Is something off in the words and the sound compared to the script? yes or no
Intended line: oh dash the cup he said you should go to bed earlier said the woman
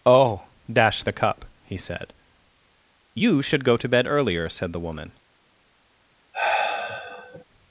yes